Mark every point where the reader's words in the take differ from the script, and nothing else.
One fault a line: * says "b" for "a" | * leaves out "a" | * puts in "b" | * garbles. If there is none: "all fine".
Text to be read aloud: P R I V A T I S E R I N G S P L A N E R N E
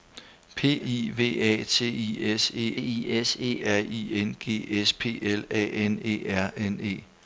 * leaves out "R"
* puts in "I S E"